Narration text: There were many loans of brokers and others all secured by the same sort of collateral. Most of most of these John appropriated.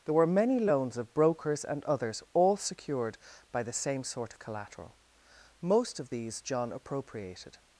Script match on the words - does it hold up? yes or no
no